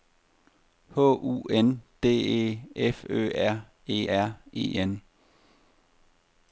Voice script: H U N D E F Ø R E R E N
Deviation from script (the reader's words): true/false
false